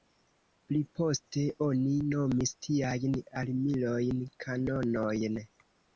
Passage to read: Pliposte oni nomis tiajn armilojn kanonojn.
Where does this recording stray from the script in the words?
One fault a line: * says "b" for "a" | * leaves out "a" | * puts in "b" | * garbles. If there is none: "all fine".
all fine